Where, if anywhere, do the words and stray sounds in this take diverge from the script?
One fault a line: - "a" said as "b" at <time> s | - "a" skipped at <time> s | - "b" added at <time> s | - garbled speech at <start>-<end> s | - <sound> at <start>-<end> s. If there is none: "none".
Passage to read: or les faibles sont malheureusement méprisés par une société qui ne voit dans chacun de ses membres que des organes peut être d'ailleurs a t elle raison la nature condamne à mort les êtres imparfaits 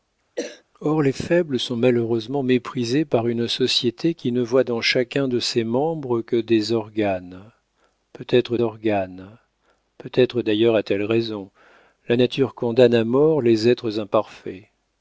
- cough at 0.4-0.6 s
- "organes peut être" added at 8.6 s